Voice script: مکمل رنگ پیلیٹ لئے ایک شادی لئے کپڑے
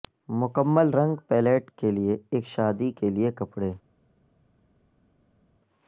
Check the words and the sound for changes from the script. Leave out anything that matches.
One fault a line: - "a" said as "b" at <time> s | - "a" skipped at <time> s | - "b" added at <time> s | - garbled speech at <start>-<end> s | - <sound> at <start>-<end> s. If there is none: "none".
- "کے" added at 1.8 s
- "کے" added at 3.0 s